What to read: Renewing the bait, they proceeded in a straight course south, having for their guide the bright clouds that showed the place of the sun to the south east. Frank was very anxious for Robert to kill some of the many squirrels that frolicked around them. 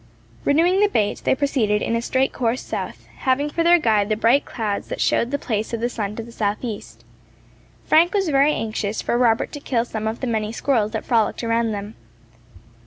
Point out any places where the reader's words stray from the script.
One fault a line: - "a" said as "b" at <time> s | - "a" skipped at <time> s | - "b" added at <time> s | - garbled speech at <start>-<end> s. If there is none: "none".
none